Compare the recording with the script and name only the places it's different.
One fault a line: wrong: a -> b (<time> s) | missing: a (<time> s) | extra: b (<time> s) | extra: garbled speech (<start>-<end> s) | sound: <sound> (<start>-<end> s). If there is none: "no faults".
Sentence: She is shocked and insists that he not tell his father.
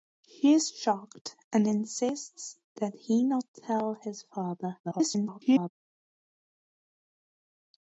extra: garbled speech (4.8-5.7 s)